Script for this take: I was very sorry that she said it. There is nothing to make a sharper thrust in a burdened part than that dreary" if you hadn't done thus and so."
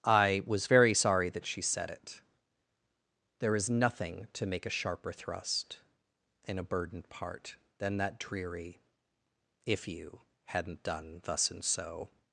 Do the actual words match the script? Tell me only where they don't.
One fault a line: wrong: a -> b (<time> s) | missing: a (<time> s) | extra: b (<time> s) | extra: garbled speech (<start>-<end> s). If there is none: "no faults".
no faults